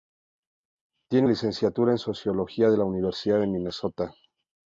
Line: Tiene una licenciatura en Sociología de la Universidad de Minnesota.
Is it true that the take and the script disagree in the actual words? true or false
true